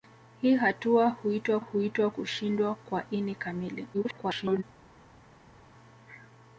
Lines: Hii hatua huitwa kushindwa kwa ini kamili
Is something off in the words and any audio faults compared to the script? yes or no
yes